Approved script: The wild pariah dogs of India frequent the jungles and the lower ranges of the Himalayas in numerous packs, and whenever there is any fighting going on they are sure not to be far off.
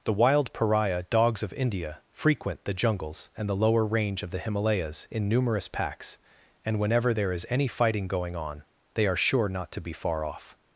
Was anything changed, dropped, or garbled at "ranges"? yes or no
yes